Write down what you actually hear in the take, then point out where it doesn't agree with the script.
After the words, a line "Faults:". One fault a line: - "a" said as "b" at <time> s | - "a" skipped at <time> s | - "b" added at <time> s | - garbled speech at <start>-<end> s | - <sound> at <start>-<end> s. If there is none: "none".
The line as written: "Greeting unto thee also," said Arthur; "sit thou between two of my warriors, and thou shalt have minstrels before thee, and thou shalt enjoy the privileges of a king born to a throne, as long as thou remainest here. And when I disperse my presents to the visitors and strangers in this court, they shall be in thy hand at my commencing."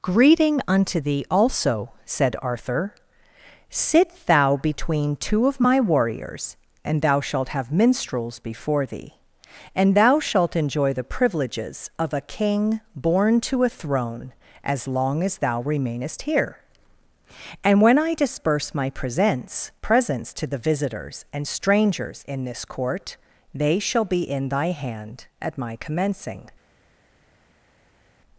"Greeting unto thee also," said Arthur; "sit thou between two of my warriors, and thou shalt have minstrels before thee, and thou shalt enjoy the privileges of a king born to a throne, as long as thou remainest here. And when I disperse my presents presents to the visitors and strangers in this court, they shall be in thy hand at my commencing."
Faults:
- "presents" added at 19.8 s